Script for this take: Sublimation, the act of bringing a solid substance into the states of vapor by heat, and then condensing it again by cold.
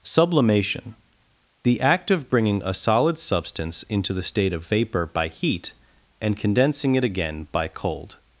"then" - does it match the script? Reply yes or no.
no